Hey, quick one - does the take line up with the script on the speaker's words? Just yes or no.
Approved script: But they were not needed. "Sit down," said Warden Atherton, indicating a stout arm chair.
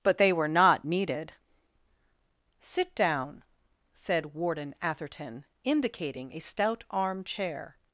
yes